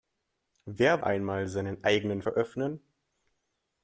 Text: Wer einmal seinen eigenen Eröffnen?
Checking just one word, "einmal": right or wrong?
right